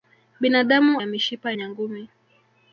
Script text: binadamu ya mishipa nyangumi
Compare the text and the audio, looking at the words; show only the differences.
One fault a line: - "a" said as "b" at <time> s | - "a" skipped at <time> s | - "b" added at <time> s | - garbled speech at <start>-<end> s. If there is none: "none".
none